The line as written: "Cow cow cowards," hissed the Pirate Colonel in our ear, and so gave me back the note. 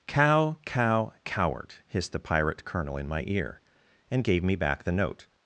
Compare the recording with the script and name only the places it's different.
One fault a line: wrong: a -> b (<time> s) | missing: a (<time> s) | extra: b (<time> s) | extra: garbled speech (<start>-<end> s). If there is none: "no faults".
wrong: cowards -> coward (1.2 s)
wrong: our -> my (3.1 s)
missing: so (4.2 s)